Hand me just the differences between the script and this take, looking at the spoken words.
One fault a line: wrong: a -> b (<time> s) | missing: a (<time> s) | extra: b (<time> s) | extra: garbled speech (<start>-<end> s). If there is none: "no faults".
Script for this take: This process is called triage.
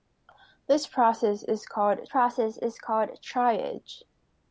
extra: process is called (2.0 s)